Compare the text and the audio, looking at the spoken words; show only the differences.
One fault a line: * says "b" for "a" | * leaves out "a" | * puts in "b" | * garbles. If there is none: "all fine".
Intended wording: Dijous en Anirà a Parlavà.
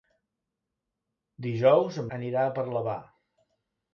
all fine